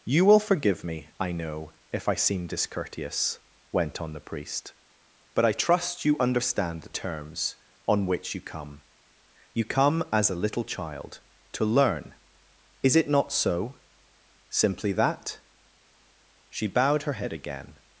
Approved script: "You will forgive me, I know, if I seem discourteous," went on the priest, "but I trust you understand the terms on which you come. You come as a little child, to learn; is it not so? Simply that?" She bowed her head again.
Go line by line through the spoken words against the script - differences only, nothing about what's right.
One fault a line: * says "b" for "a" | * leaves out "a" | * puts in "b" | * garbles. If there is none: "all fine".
all fine